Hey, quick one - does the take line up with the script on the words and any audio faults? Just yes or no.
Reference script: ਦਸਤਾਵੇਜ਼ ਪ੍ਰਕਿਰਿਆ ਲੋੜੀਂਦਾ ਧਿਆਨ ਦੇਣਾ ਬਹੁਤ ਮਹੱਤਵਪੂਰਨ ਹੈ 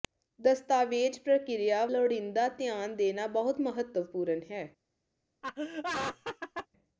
no